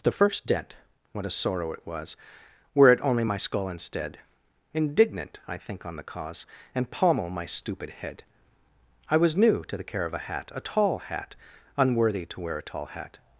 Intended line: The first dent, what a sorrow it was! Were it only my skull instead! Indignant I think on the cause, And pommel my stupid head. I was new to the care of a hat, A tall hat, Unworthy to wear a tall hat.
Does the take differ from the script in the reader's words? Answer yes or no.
no